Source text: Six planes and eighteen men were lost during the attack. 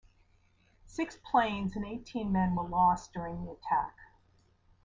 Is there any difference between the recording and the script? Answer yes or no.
no